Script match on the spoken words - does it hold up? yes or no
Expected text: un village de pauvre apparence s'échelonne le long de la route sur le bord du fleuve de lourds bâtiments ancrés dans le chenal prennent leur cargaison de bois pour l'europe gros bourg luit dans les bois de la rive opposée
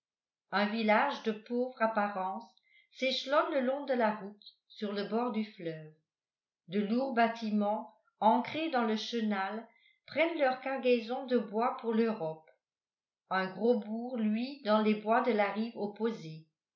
no